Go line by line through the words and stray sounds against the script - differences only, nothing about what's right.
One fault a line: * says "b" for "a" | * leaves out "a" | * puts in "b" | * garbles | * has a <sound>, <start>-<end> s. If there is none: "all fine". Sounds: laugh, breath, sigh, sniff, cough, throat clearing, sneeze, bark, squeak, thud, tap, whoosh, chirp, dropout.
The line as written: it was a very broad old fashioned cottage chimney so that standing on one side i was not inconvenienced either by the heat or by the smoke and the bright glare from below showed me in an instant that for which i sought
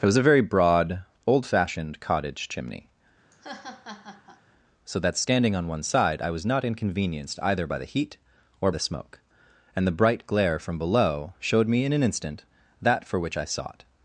* has a laugh, 3.3-4.4 s
* leaves out "by"